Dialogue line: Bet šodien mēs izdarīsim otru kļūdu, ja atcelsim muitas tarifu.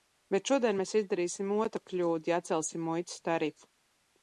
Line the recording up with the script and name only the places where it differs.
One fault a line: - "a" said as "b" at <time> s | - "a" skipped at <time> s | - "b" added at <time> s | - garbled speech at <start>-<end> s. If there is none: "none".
none